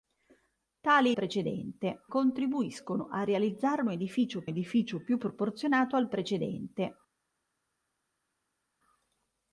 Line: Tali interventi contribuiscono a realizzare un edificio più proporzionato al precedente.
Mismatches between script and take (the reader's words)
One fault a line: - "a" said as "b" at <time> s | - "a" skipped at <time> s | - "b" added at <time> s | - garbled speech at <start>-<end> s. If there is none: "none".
- "interventi" said as "precedente" at 1.1 s
- "edificio" added at 4.5 s